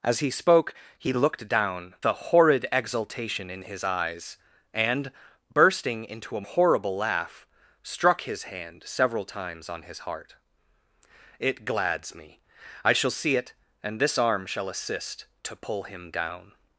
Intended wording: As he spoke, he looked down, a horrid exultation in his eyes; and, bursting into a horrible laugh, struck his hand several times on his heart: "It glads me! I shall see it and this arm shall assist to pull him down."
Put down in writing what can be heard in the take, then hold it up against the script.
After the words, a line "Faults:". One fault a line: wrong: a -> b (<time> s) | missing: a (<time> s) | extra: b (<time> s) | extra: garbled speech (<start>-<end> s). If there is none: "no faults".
As he spoke, he looked down, a horrid exultation in his eyes; and, bursting into a horrible laugh, struck his hand several times on his heart: "It glads me! I shall see it and this arm shall assist to pull him down."
Faults:
no faults